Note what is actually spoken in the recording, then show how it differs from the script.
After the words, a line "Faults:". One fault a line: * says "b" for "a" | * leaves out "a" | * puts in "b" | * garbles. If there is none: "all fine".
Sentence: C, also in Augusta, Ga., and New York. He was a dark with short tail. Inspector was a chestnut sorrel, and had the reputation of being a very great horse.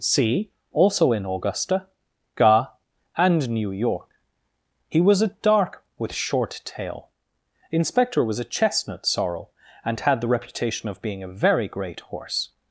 C, also in Augusta, Ga., and New York. He was a dark with short tail. Inspector was a chestnut sorrel, and had the reputation of being a very great horse.
Faults:
all fine